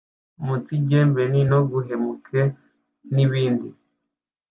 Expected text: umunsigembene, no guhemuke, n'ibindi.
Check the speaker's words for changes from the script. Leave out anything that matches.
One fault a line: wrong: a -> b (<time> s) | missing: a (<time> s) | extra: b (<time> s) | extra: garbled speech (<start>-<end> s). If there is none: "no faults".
no faults